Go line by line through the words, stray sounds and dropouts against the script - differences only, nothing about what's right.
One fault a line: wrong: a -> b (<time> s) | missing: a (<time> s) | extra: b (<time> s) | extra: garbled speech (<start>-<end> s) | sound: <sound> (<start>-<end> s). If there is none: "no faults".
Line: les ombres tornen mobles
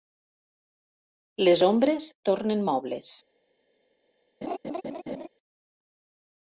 sound: laugh (4.4-5.3 s)